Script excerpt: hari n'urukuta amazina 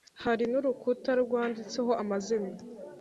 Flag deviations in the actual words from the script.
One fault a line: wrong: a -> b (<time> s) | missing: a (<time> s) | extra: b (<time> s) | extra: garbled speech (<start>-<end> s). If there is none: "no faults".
extra: rwanditseho (1.2 s)